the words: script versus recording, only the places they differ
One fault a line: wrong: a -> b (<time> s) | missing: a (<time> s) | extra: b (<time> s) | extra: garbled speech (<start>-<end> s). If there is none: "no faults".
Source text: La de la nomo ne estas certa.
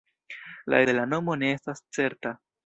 no faults